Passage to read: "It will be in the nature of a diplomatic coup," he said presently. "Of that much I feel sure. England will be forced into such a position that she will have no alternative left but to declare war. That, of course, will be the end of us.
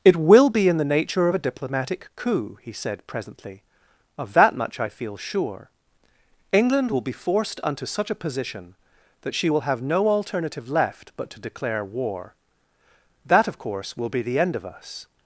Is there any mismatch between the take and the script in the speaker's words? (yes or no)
yes